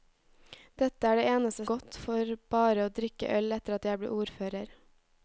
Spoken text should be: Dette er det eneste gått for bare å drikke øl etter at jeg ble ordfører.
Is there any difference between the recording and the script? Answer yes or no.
no